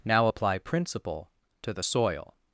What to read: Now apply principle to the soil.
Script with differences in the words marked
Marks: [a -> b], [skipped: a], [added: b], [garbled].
Now apply principle to the soil.